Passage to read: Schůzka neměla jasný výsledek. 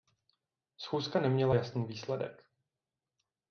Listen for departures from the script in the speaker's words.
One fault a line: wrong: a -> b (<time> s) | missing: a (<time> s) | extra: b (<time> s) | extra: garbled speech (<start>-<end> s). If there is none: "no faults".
no faults